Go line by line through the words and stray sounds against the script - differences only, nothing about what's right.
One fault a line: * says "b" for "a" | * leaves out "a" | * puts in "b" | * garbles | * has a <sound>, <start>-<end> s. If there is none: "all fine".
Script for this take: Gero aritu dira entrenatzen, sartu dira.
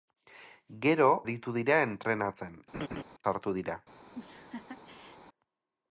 * has a laugh, 2.7-3.0 s
* has a laugh, 4.1-5.2 s